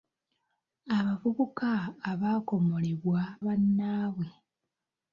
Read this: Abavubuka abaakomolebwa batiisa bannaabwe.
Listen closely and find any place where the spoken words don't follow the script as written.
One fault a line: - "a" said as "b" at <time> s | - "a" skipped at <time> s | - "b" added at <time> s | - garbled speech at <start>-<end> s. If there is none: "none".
- "batiisa" skipped at 3.2 s